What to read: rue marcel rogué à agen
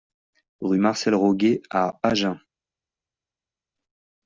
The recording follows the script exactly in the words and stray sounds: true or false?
true